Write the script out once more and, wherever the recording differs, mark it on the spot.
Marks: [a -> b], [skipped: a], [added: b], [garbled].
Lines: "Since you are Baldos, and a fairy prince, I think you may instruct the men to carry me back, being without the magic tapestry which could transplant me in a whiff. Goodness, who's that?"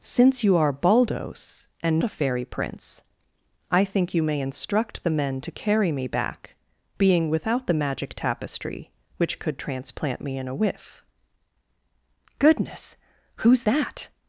"Since you are Baldos, and a fairy prince, I think you may instruct the men to carry me back, being without the magic tapestry which could transplant me in a whiff. Goodness, who's that?"